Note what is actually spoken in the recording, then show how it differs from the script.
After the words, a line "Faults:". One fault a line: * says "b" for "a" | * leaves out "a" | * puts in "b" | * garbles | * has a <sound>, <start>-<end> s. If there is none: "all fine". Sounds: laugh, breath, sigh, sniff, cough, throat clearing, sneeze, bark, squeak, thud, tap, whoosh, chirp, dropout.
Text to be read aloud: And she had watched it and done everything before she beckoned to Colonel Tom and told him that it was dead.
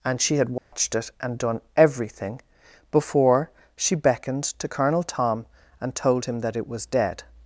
And she had watched it and done everything before she beckoned to Colonel Tom and told him that it was dead.
Faults:
* has a dropout, 0.6-0.7 s